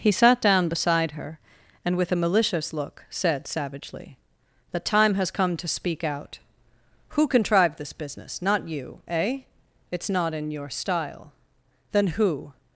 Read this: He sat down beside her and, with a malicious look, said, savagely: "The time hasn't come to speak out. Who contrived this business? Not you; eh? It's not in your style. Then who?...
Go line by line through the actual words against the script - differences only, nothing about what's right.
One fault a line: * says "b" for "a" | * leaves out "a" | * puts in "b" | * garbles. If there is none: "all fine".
* says "has" for "hasn't"